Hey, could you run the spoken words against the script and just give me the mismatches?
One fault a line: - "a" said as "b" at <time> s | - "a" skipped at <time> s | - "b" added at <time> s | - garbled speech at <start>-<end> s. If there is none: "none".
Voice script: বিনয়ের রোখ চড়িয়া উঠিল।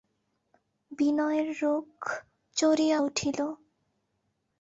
none